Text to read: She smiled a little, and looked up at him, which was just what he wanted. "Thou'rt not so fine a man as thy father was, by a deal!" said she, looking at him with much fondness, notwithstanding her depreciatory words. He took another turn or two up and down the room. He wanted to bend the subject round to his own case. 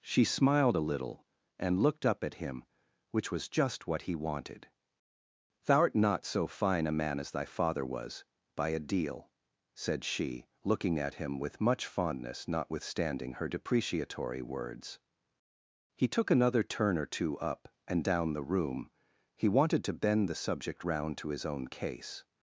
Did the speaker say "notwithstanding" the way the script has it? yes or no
yes